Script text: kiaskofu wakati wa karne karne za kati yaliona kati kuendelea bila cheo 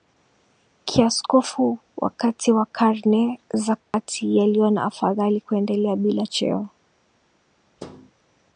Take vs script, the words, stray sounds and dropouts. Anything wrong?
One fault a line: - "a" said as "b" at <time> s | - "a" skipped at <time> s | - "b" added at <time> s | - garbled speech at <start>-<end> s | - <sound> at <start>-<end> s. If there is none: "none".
- "karne" skipped at 3.4 s
- dropout at 3.8-3.9 s
- "kati" said as "afadhali" at 4.8 s
- thud at 7.8-8.1 s